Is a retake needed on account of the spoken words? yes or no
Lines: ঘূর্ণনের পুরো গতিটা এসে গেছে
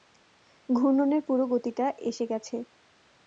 no